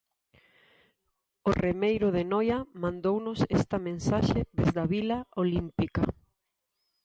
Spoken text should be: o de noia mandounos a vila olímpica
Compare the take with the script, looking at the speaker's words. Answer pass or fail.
fail